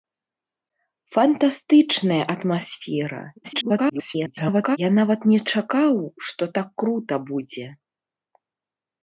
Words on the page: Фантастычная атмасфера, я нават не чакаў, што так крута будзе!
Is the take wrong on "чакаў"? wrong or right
right